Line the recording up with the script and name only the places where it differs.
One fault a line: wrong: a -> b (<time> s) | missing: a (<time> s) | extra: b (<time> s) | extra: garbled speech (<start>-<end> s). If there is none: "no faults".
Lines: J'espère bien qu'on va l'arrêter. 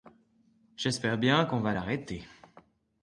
no faults